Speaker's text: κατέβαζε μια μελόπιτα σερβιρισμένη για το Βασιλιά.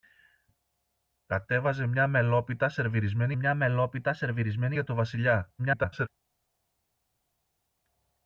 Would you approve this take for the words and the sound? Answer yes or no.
no